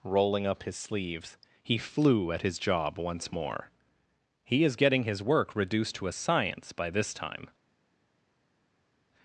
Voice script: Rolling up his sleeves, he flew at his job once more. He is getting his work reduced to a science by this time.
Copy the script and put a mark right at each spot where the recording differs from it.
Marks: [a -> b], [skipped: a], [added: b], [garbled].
Rolling up his sleeves, he flew at his job once more. He is getting his work reduced to a science by this time.